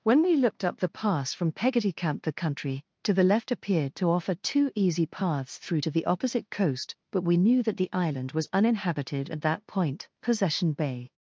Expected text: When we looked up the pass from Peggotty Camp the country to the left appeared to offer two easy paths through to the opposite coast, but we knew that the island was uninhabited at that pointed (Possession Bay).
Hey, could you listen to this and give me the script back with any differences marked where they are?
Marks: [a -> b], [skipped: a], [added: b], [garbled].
When we looked up the pass from Peggotty Camp the country to the left appeared to offer two easy paths through to the opposite coast, but we knew that the island was uninhabited at that [pointed -> point] (Possession Bay).